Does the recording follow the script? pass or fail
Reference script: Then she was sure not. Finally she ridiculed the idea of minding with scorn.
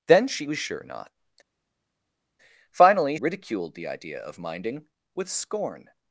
fail